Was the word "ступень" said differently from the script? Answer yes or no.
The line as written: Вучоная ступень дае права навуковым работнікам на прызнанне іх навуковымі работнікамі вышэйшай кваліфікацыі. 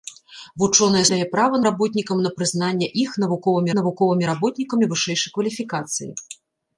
yes